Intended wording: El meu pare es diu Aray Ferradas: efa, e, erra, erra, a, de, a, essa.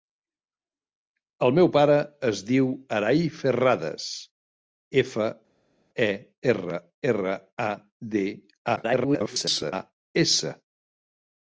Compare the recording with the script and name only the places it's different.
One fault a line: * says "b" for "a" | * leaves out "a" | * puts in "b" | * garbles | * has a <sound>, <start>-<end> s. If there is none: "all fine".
* garbles